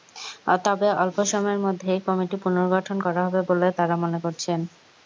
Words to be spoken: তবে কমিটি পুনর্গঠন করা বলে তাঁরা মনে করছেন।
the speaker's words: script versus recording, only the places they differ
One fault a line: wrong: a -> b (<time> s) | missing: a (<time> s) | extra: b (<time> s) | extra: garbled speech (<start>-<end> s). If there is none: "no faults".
extra: অল্প সময়ের মধ্যেই (1.0 s)
extra: হবে (3.3 s)